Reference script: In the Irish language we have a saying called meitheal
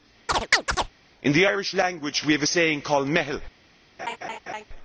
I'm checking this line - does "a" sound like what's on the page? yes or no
yes